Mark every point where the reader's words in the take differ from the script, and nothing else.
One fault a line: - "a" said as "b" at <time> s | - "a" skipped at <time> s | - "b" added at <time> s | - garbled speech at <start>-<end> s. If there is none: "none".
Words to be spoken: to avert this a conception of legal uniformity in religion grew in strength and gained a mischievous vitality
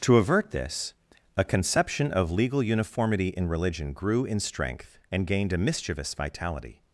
none